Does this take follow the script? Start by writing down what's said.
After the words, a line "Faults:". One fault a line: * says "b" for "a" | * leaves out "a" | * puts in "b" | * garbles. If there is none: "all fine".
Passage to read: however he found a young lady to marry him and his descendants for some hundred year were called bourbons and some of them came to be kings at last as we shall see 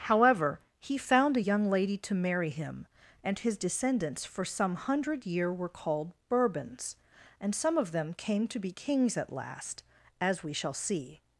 however he found a young lady to marry him and his descendants for some hundred year were called bourbons and some of them came to be kings at last as we shall see
Faults:
all fine